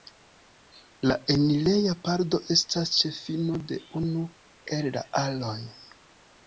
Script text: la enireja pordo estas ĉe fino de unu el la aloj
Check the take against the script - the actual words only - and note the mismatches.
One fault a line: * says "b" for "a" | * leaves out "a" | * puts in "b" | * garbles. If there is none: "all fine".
all fine